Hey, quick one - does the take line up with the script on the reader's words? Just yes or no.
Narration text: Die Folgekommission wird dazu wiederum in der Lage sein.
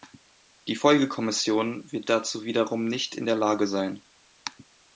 no